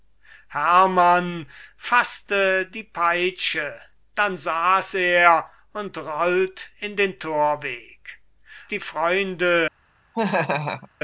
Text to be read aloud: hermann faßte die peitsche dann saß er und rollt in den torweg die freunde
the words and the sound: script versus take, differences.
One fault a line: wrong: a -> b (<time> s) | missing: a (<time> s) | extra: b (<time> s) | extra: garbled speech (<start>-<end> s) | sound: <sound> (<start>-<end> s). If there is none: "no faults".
sound: laugh (10.1-10.9 s)